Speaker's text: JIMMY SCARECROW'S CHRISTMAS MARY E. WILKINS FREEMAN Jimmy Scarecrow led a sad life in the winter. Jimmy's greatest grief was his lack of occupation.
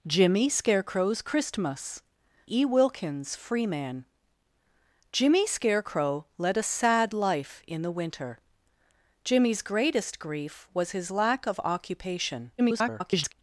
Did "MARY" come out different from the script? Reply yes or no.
yes